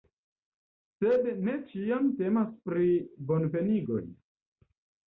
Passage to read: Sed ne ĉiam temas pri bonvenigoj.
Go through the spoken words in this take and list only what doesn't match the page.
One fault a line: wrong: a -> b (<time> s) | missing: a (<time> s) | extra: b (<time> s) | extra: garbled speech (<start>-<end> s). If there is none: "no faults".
no faults